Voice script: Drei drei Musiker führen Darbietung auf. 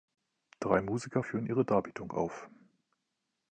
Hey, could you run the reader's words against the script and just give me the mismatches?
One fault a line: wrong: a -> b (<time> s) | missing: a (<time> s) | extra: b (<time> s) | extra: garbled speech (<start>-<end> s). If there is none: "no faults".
missing: drei (0.8 s)
extra: ihre (1.5 s)